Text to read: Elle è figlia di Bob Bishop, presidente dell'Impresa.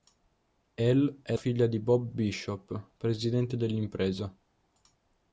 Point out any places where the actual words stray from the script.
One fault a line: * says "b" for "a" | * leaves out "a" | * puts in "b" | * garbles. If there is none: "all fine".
all fine